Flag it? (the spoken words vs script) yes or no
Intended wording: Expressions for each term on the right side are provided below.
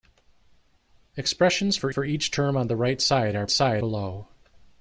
yes